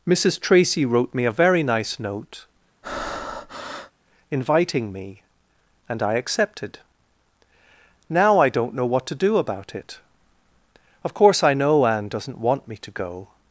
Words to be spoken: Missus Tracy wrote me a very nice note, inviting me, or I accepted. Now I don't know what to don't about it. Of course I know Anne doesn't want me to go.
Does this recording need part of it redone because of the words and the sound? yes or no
yes